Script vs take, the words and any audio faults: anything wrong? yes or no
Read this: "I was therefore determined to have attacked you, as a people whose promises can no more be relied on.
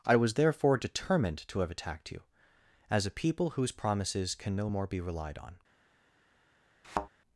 yes